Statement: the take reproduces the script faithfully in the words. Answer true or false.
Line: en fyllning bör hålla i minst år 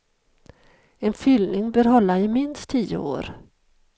false